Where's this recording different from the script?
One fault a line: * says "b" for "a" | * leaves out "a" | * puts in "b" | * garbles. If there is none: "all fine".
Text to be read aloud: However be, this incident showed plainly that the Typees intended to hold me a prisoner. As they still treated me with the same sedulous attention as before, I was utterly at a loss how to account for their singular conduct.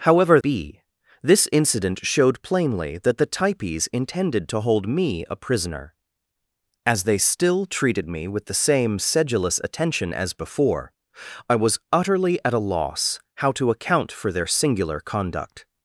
all fine